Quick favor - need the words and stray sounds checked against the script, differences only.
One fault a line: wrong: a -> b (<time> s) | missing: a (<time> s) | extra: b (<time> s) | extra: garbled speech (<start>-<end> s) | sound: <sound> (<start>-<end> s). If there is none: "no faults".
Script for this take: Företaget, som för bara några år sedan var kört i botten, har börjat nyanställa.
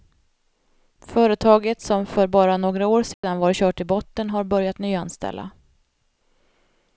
sound: dropout (3.1-3.2 s)